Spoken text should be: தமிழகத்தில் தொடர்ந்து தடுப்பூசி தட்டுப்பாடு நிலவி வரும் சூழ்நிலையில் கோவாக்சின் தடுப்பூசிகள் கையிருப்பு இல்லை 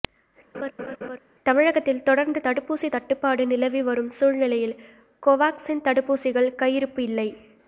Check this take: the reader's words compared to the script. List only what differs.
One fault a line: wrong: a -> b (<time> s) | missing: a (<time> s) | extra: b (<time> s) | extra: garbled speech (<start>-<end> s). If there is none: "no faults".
no faults